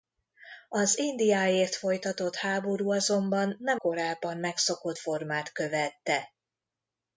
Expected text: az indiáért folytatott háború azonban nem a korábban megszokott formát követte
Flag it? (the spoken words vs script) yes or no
yes